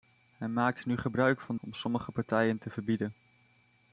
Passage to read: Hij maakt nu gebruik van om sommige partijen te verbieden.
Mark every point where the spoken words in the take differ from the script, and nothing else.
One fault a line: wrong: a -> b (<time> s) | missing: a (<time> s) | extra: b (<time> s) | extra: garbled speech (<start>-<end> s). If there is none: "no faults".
no faults